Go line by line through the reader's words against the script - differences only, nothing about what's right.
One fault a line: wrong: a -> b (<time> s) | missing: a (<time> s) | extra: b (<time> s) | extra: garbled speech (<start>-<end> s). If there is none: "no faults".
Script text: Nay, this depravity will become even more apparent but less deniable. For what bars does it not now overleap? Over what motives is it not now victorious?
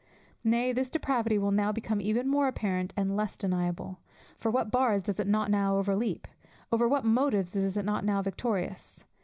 extra: now (1.5 s)
wrong: but -> and (3.0 s)